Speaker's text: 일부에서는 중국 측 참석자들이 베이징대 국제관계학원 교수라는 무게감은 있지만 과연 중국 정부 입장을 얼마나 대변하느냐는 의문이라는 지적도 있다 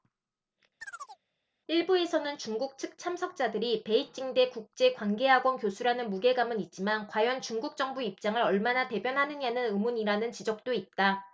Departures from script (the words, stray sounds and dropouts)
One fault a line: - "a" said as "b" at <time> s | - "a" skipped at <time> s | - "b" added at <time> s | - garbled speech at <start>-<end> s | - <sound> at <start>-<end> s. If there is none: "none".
- chirp at 0.8-1.2 s